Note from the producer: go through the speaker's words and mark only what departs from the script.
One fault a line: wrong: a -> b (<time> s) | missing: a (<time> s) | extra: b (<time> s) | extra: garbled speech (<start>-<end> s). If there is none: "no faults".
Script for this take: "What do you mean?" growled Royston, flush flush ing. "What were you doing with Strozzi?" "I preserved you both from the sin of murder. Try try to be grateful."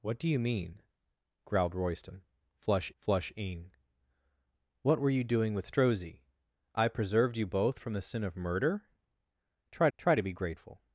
no faults